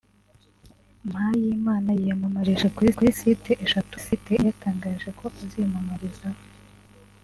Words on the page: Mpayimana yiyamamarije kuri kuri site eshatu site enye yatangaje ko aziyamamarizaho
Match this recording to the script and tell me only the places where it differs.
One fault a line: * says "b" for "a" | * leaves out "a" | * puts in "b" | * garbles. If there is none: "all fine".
all fine